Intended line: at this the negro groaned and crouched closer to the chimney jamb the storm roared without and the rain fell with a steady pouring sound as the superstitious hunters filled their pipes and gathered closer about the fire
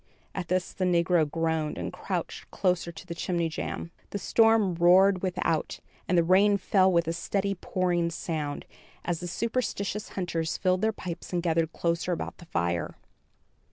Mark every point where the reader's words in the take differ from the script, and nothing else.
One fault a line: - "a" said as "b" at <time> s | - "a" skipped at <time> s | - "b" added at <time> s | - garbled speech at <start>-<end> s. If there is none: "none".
none